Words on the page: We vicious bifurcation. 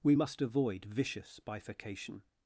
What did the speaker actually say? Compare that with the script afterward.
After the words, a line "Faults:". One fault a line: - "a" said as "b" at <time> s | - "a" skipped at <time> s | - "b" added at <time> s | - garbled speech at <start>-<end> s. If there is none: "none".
We must avoid vicious bifurcation.
Faults:
- "must avoid" added at 0.1 s